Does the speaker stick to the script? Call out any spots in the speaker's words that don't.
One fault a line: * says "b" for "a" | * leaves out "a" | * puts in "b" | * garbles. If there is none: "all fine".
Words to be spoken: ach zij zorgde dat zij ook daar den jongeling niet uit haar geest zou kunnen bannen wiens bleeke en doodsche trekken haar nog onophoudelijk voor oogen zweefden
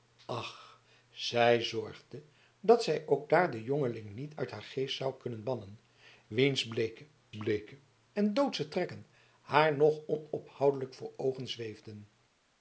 * puts in "bleeke"